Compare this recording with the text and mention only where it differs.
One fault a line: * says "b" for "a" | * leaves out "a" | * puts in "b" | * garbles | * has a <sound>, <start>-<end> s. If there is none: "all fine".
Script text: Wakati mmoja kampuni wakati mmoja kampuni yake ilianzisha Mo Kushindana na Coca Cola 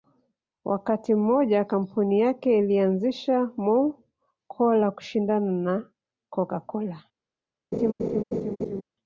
* leaves out "wakati mmoja kampuni"
* puts in "Cola"
* has a laugh, 7.7-8.8 s